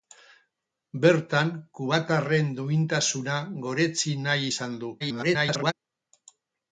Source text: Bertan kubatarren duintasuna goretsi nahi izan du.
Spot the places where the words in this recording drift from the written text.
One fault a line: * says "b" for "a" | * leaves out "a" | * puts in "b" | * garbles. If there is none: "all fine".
* garbles